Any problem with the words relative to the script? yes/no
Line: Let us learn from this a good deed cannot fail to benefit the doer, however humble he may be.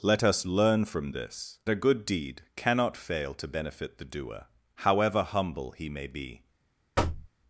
no